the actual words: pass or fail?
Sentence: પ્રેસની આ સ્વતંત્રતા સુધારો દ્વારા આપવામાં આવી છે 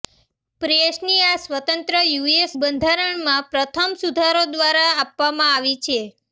fail